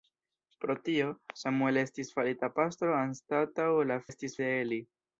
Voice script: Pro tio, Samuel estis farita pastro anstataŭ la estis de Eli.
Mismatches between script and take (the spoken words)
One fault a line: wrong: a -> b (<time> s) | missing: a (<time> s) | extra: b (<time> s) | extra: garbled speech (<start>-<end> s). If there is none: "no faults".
no faults